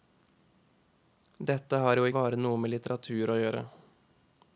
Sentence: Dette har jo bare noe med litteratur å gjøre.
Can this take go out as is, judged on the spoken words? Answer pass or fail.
pass